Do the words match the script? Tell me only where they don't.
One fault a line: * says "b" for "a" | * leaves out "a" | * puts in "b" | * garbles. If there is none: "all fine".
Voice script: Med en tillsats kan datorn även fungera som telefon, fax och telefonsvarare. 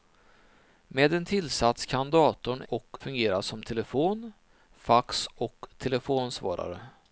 * says "och" for "även"